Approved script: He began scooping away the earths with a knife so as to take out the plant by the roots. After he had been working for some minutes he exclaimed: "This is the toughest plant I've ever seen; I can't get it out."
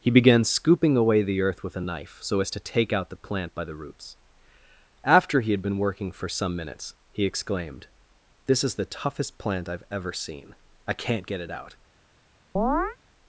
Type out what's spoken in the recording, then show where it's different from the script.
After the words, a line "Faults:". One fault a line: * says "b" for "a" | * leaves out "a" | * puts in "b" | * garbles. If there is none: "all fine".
He began scooping away the earth with a knife so as to take out the plant by the roots. After he had been working for some minutes he exclaimed: "This is the toughest plant I've ever seen; I can't get it out."
Faults:
* says "earth" for "earths"